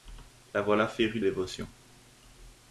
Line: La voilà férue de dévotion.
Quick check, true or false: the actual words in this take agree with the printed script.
false